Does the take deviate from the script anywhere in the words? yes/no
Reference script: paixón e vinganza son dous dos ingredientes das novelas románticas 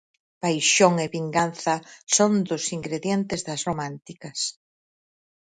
yes